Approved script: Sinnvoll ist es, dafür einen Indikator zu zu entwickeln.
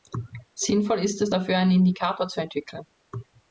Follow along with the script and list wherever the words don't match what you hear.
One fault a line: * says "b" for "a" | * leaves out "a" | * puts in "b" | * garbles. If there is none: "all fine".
* leaves out "zu"